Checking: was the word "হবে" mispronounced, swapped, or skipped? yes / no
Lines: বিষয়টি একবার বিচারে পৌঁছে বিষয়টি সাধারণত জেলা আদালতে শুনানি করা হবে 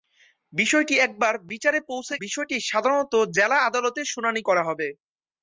no